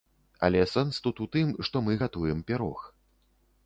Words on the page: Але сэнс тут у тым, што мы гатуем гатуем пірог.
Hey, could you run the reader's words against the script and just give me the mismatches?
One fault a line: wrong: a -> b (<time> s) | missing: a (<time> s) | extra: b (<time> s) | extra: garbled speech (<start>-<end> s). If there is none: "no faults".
missing: гатуем (2.5 s)